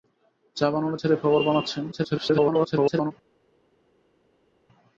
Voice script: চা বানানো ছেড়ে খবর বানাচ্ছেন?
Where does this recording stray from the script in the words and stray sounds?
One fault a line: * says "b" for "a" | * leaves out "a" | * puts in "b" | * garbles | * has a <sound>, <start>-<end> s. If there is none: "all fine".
* garbles